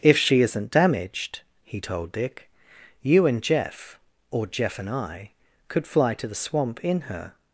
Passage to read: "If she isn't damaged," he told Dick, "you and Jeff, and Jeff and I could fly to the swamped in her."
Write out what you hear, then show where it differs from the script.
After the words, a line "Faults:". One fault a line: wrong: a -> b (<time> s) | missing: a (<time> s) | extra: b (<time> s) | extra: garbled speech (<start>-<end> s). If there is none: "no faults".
"If she isn't damaged," he told Dick, "you and Jeff, or Jeff and I could fly to the swamp in her."
Faults:
wrong: and -> or (4.3 s)
wrong: swamped -> swamp (6.4 s)